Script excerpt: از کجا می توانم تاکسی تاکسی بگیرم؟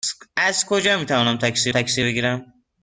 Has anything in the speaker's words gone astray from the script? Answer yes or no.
no